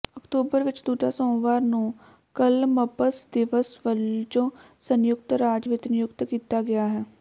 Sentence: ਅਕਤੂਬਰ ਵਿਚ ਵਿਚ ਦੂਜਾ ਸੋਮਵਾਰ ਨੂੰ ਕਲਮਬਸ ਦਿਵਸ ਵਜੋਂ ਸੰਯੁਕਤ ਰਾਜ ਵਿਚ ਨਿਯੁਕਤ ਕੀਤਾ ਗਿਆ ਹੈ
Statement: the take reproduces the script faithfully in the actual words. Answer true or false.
false